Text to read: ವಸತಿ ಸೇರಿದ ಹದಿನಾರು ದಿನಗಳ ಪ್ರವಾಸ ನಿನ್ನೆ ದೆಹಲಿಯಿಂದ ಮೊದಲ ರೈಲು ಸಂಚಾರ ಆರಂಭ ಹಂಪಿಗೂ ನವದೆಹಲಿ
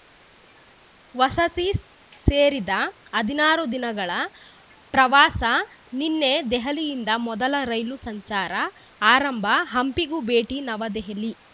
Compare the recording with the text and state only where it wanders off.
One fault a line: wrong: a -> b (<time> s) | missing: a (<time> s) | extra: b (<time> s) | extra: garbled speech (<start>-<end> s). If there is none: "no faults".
extra: ಭೇಟಿ (10.3 s)